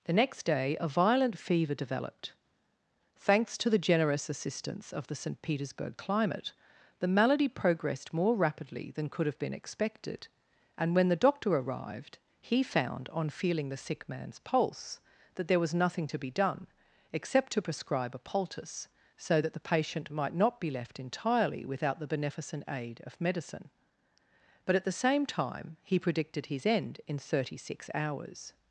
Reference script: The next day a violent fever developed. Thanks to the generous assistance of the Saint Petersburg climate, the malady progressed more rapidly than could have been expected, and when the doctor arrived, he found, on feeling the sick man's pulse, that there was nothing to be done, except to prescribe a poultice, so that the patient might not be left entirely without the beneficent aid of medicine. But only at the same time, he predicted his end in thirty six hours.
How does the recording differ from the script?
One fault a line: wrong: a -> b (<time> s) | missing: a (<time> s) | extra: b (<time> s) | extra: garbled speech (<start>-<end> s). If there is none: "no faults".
missing: only (24.7 s)